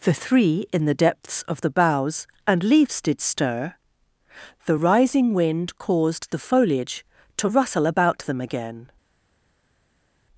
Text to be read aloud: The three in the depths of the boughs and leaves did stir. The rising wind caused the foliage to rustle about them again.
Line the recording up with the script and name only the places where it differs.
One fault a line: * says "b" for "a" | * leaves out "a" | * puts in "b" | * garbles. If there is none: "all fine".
all fine